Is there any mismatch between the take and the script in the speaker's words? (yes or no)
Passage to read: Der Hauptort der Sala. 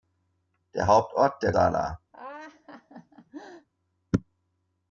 no